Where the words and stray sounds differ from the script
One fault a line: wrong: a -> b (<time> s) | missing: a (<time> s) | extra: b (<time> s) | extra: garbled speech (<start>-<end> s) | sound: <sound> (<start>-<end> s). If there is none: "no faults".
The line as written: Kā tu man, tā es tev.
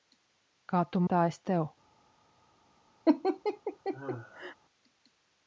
missing: man (1.0 s)
sound: laugh (3.1-4.6 s)